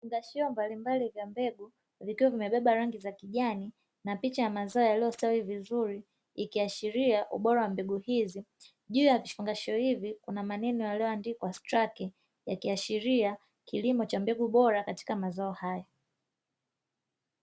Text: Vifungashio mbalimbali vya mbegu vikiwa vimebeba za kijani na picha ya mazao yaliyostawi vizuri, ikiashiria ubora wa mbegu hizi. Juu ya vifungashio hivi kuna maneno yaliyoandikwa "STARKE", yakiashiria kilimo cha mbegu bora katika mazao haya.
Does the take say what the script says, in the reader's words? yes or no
no